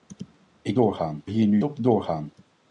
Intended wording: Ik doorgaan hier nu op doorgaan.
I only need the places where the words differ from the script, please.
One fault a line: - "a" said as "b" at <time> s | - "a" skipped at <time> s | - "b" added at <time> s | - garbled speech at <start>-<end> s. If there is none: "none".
none